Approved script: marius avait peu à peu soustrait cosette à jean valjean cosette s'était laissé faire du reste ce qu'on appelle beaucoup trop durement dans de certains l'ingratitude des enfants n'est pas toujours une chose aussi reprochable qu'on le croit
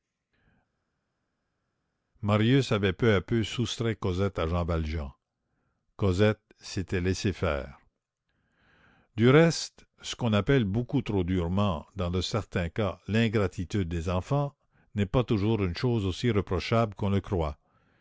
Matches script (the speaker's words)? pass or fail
fail